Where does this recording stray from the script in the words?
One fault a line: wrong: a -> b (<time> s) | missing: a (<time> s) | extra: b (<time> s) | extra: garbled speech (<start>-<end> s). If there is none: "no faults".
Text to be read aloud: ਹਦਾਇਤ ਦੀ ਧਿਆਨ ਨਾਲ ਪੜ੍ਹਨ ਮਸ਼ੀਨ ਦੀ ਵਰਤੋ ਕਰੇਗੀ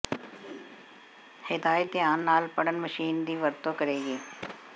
missing: ਦੀ (1.9 s)